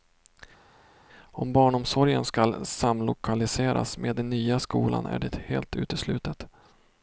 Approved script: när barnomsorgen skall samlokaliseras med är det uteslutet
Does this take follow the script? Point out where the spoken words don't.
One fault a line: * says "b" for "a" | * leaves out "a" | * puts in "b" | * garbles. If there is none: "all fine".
* says "om" for "när"
* puts in "den nya skolan"
* puts in "helt"